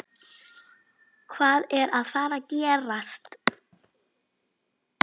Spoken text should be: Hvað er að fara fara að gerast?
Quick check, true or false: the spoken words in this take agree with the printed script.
false